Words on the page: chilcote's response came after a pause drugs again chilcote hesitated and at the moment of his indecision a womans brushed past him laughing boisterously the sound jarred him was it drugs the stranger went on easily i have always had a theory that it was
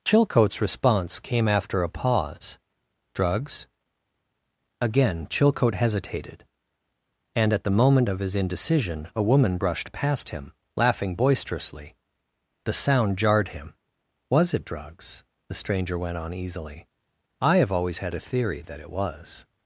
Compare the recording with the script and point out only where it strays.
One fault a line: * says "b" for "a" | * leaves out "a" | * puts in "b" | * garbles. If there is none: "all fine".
* says "woman" for "womans"